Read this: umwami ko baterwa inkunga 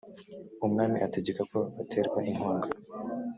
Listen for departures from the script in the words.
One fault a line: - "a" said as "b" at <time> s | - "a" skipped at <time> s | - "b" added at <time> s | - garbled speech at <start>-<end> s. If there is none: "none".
- "ategeka" added at 1.1 s